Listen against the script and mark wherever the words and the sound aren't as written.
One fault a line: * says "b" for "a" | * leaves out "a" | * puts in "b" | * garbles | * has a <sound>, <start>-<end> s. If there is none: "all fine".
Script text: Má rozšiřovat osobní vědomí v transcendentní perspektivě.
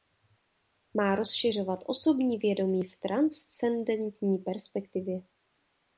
all fine